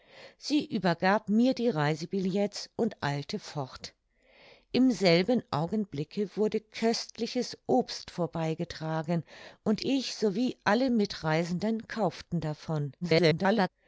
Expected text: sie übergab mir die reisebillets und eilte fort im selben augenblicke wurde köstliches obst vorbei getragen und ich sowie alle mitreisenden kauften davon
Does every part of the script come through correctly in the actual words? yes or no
no